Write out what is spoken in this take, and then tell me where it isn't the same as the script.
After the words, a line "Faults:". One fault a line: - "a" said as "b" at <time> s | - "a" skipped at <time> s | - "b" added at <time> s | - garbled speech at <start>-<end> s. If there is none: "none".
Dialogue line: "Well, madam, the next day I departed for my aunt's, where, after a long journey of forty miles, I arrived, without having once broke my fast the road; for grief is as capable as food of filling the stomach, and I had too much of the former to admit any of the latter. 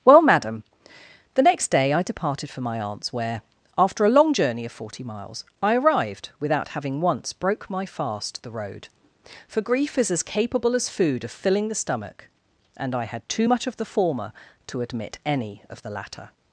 "Well, madam, the next day I departed for my aunt's, where, after a long journey of forty miles, I arrived, without having once broke my fast the road; for grief is as capable as food of filling the stomach, and I had too much of the former to admit any of the latter.
Faults:
none